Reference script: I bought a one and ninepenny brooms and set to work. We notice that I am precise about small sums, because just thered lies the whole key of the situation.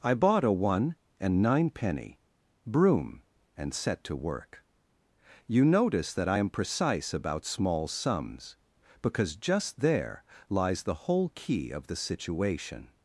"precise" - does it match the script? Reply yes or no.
yes